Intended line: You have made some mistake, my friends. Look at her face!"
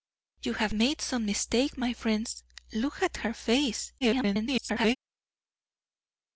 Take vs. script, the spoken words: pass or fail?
fail